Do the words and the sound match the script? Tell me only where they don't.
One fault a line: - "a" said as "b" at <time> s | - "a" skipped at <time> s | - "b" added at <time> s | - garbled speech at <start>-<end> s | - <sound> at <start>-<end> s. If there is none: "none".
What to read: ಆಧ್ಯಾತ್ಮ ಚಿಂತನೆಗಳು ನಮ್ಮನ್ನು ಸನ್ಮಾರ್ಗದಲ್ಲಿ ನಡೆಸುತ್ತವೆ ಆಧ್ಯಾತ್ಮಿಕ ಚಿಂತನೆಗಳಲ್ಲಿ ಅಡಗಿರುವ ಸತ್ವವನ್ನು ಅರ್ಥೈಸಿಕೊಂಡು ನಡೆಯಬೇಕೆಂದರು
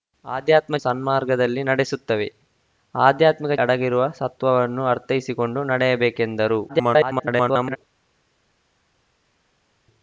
- "ಚಿಂತನೆಗಳು ನಮ್ಮನ್ನು" skipped at 0.8 s
- "ಚಿಂತನೆಗಳಲ್ಲಿ" skipped at 3.6 s
- garbled speech at 6.7-7.8 s